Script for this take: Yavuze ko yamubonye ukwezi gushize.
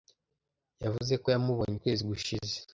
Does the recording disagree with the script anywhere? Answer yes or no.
no